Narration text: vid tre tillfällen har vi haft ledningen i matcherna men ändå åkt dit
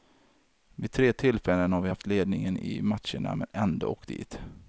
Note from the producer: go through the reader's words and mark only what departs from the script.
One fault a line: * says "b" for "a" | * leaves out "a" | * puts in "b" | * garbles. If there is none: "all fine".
all fine